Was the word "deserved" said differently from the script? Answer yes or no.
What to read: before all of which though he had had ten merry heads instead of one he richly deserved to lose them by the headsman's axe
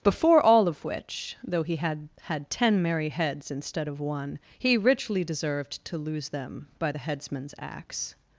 no